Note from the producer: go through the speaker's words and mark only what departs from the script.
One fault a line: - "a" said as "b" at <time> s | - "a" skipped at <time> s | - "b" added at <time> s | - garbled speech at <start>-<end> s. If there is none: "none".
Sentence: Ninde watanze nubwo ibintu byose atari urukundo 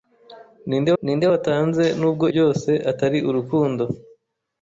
- "ninde" added at 1.0 s
- "ibintu" skipped at 2.2 s